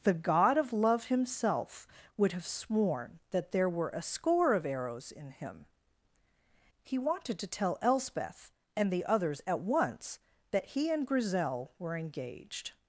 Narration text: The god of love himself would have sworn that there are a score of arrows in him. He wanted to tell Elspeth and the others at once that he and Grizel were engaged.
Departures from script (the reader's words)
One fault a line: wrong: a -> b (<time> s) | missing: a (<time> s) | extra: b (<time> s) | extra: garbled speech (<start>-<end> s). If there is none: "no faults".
wrong: are -> were (3.7 s)